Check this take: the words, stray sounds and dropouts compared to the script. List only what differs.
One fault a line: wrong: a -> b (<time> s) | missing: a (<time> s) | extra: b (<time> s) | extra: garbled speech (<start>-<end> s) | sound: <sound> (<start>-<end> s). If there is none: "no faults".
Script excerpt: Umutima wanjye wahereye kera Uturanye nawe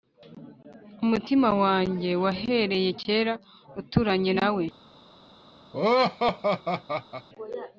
sound: laugh (5.7-7.3 s)